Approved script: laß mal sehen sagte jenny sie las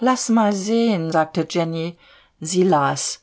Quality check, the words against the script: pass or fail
pass